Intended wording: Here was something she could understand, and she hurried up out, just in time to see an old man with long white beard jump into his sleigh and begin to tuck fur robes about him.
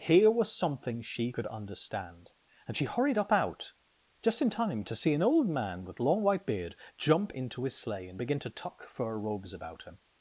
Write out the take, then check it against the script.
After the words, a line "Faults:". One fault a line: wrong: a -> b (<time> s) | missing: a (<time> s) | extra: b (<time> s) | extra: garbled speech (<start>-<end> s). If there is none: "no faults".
Here was something she could understand, and she hurried up out, just in time to see an old man with long white beard jump into his sleigh and begin to tuck fur robes about him.
Faults:
no faults